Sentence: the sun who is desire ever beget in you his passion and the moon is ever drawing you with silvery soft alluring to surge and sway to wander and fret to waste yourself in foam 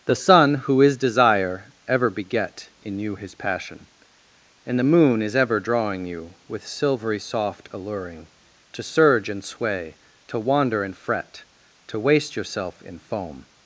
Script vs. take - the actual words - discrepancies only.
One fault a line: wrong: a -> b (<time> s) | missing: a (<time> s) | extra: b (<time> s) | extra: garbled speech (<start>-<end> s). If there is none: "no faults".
no faults